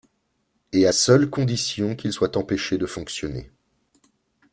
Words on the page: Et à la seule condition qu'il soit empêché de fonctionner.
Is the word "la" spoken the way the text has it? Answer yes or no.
no